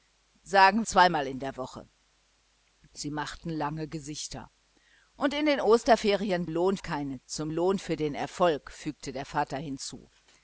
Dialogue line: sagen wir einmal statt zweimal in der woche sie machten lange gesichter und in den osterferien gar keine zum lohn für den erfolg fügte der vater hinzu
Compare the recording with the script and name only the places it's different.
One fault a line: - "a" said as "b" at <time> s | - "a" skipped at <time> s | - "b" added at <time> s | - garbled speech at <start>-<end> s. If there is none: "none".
- "wir einmal statt" skipped at 0.9 s
- "gar" said as "lohn" at 6.5 s